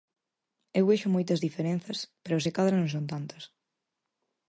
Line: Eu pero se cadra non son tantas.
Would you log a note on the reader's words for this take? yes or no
yes